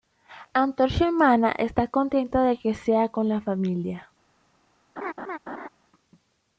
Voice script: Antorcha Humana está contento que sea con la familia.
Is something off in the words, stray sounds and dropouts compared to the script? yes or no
yes